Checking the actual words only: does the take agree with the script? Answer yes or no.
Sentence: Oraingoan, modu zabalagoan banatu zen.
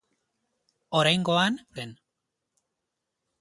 no